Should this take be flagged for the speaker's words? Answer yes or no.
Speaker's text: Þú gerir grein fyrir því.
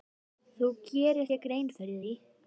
yes